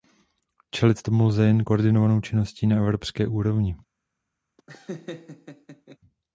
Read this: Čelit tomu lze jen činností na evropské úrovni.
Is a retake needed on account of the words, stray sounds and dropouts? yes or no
yes